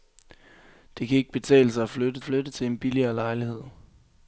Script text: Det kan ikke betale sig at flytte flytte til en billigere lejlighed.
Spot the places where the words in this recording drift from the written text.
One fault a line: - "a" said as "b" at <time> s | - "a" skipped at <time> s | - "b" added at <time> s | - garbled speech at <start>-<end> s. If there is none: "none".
none